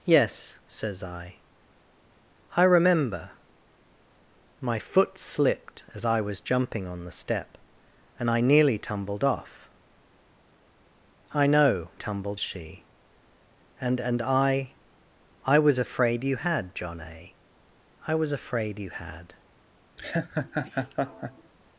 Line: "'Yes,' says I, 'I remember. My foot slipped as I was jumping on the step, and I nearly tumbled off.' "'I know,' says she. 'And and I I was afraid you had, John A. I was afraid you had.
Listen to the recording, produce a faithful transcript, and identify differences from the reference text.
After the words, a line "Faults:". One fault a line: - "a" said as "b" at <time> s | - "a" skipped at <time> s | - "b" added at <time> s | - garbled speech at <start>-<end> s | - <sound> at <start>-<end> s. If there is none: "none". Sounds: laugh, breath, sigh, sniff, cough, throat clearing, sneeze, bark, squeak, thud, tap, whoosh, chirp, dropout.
"'Yes,' says I, 'I remember. My foot slipped as I was jumping on the step, and I nearly tumbled off.' "'I know,' tumbled she. 'And and I I was afraid you had, John A. I was afraid you had.
Faults:
- "says" said as "tumbled" at 11.9 s
- laugh at 20.0-21.5 s